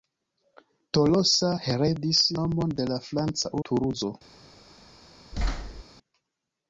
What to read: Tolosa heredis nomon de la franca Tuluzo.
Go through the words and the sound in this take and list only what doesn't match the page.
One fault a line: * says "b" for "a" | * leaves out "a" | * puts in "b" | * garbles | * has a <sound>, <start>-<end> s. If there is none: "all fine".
* has a thud, 5.3-5.8 s